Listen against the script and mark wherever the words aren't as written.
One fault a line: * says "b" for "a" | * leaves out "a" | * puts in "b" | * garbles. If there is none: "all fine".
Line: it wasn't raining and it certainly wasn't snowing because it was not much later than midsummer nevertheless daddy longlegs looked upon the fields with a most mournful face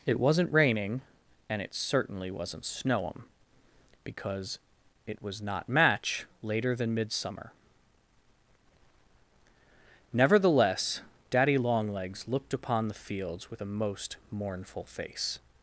* says "match" for "much"